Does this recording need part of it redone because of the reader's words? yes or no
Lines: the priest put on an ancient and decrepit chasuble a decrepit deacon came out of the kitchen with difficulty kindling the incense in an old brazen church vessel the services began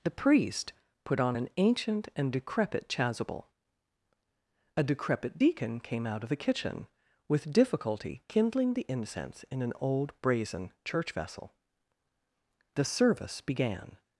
yes